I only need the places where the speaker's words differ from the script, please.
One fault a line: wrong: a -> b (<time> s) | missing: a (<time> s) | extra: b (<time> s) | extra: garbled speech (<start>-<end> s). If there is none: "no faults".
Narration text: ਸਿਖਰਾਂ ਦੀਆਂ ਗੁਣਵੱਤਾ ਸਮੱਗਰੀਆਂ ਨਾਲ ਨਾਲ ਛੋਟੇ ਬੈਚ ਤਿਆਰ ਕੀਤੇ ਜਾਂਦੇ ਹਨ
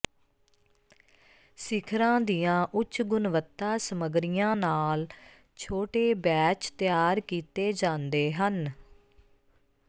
extra: ਉੱਚ (2.7 s)
missing: ਨਾਲ (5.1 s)